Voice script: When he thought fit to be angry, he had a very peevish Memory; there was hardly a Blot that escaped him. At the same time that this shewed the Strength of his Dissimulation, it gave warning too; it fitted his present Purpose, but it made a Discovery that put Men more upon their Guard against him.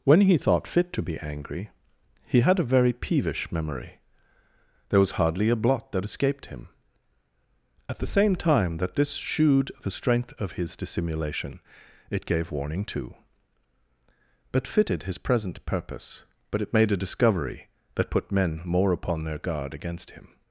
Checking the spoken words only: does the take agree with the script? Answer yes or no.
no